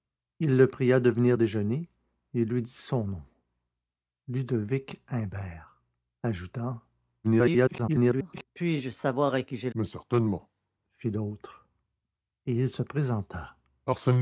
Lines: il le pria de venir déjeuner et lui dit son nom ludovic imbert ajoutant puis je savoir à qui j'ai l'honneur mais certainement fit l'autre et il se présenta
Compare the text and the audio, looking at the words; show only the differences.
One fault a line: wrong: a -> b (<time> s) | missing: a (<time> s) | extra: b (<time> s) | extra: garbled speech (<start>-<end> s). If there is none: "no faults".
extra: garbled speech (7.2-8.4 s)
missing: l'honneur (9.7 s)